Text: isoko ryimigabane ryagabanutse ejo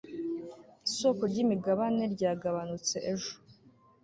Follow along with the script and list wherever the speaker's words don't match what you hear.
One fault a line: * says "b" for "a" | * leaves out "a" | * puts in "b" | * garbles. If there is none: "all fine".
all fine